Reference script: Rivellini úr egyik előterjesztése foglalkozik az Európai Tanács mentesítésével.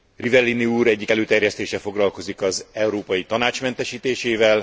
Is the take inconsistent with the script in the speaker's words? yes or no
no